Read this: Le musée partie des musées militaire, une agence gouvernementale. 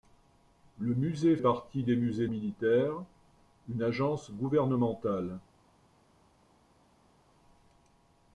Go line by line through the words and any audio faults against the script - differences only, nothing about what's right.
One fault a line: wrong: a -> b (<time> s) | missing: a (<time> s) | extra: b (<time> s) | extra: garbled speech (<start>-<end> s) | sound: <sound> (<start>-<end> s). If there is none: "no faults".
no faults